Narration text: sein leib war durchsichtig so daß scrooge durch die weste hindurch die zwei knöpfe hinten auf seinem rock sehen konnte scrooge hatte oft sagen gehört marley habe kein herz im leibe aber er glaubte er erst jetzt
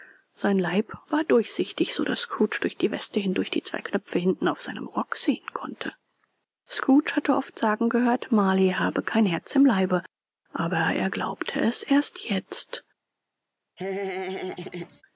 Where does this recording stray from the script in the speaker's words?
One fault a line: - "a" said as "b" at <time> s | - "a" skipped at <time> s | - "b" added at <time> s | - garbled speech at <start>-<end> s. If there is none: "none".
- "er" said as "es" at 11.6 s